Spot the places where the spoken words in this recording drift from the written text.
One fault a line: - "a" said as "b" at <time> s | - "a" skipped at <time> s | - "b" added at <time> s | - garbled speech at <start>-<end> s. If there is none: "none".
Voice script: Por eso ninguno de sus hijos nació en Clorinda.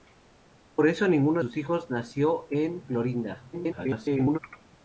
- "de" skipped at 1.4 s
- garbled speech at 3.5-4.4 s